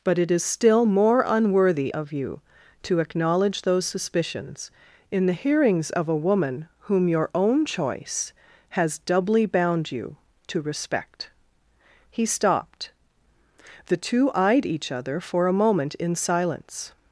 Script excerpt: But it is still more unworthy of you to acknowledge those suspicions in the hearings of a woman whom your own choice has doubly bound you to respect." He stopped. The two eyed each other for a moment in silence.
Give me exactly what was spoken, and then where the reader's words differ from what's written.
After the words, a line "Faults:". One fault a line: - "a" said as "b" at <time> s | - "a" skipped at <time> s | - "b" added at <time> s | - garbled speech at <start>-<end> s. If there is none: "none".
But it is still more unworthy of you to acknowledge those suspicions in the hearings of a woman whom your own choice has doubly bound you to respect." He stopped. The two eyed each other for a moment in silence.
Faults:
none